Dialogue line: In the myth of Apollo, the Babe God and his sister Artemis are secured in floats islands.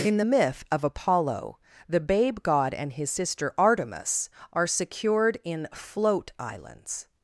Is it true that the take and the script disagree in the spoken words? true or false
true